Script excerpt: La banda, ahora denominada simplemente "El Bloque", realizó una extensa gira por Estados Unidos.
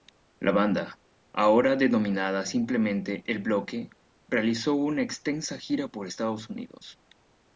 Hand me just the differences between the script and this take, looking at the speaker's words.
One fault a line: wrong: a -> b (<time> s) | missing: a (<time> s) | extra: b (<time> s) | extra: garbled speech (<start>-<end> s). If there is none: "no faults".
no faults